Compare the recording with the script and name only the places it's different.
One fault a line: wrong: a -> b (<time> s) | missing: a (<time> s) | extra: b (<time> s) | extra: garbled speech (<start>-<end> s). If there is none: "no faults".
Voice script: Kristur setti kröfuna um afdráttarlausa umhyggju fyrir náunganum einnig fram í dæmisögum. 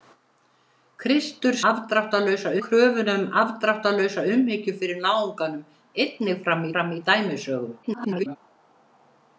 wrong: setti -> afdráttarlausa (1.7 s)
extra: fram (6.8 s)
extra: garbled speech (7.8-8.4 s)